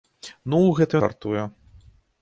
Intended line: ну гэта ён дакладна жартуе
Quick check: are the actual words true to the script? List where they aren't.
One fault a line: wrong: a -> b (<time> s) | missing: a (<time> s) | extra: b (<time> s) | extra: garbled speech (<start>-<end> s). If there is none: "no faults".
missing: ён дакладна (1.0 s)